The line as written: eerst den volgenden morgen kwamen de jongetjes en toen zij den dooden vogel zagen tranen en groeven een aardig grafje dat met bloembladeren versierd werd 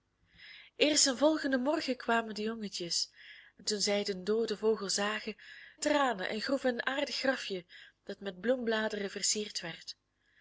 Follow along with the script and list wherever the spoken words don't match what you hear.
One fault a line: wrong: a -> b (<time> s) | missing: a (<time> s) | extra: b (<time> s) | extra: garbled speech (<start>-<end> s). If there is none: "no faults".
no faults